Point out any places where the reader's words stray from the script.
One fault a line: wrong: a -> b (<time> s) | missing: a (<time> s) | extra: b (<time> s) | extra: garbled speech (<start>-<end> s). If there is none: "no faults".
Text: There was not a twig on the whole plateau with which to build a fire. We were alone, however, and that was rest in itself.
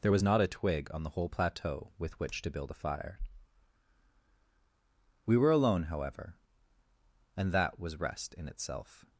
no faults